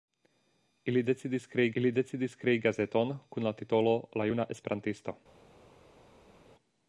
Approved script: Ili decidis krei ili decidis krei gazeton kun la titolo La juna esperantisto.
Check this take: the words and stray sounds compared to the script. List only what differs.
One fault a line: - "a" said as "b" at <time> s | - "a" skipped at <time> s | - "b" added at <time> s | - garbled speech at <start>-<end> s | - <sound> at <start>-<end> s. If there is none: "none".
none